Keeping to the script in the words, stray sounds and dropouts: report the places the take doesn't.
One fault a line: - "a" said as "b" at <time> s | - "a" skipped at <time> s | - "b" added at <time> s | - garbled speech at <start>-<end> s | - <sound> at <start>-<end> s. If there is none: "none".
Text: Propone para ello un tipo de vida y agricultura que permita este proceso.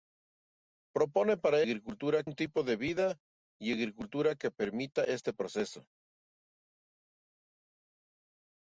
- "ello" said as "agricultura" at 1.6 s